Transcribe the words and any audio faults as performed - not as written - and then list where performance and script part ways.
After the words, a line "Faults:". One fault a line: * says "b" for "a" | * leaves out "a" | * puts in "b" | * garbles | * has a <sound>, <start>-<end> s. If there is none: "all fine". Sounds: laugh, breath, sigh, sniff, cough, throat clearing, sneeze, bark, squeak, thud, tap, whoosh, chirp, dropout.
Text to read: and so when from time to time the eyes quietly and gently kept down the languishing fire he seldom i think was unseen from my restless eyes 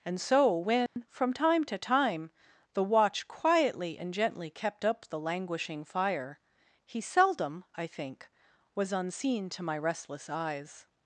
and so when from time to time the watch quietly and gently kept up the languishing fire he seldom i think was unseen to my restless eyes
Faults:
* has a dropout, 0.9-1.0 s
* says "watch" for "eyes"
* says "up" for "down"
* says "to" for "from"